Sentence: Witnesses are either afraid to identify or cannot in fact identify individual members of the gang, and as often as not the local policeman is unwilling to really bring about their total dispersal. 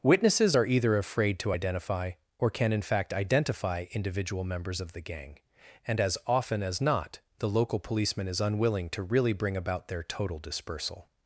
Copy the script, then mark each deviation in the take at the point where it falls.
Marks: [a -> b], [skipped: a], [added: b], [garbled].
Witnesses are either afraid to identify or [cannot -> can] in fact identify individual members of the gang, and as often as not the local policeman is unwilling to really bring about their total dispersal.